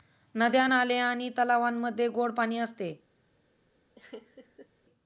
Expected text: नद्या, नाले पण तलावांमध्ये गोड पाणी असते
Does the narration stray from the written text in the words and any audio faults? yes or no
yes